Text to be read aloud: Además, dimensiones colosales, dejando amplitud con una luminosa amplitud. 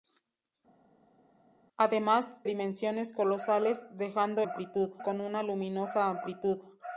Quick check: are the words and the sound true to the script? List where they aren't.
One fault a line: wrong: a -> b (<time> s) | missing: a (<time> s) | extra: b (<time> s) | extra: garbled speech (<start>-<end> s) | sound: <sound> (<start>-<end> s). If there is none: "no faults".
no faults